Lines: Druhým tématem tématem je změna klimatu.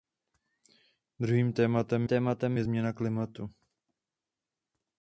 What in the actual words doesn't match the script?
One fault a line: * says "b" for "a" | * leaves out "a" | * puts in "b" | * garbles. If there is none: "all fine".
all fine